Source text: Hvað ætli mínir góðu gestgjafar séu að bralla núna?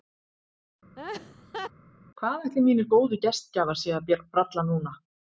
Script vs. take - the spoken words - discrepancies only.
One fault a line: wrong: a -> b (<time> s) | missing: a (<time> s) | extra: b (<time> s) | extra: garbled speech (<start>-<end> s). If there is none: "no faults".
no faults